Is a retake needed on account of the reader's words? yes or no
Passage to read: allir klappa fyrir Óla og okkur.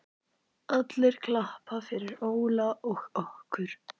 no